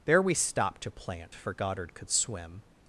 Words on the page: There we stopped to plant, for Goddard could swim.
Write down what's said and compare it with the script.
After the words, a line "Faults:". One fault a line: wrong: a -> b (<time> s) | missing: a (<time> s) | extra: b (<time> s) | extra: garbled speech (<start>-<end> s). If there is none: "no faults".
There we stopped to plant, for Goddard could swim.
Faults:
no faults